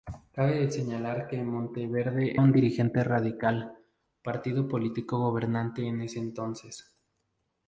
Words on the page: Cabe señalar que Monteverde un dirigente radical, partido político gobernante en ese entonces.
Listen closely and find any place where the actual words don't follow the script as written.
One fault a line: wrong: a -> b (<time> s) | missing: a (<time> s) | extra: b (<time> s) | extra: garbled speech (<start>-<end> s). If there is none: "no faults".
no faults